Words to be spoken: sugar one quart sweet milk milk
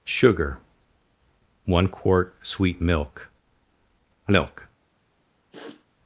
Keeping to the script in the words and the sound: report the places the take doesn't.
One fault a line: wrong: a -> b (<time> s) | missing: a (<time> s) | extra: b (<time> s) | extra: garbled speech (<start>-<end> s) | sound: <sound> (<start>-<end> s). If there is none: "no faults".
sound: sniff (5.5-5.9 s)